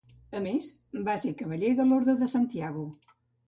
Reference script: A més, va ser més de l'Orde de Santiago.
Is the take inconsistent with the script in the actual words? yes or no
yes